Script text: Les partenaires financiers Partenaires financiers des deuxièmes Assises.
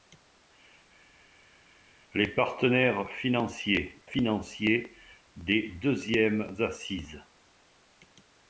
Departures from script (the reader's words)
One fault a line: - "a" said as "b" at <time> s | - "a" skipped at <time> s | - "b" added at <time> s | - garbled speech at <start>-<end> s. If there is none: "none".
- "Partenaires" skipped at 4.0 s